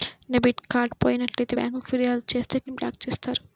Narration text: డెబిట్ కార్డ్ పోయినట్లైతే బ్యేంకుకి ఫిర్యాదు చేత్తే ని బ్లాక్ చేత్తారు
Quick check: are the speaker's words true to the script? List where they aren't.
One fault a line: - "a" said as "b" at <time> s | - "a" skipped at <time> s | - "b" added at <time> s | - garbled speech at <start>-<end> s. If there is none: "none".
none